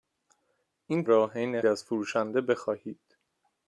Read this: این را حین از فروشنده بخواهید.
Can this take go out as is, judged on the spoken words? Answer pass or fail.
pass